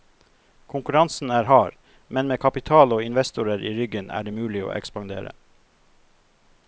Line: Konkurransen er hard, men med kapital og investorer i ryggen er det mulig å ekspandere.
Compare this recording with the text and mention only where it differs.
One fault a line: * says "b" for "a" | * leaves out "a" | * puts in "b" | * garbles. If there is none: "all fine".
all fine